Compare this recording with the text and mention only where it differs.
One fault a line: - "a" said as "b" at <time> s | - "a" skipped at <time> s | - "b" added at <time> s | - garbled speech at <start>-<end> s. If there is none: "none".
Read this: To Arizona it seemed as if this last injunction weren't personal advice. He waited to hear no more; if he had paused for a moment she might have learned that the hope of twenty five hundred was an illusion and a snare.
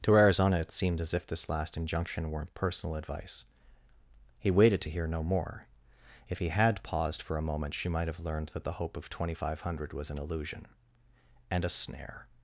none